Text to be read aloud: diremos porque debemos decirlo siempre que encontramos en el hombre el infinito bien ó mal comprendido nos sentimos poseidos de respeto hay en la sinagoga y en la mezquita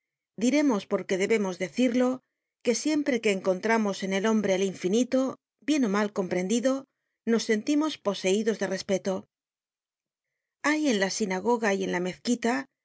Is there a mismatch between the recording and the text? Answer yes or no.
yes